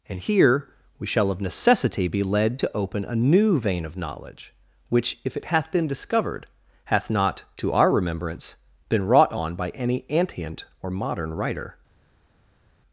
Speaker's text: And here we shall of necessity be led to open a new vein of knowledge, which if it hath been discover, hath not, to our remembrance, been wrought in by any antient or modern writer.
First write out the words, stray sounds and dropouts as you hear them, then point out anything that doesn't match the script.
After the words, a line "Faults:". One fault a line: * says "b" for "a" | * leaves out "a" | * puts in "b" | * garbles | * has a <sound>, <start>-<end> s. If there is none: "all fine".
And here we shall of necessity be led to open a new vein of knowledge, which if it hath been discovered, hath not, to our remembrance, been wrought on by any antient or modern writer.
Faults:
* says "discovered" for "discover"
* says "on" for "in"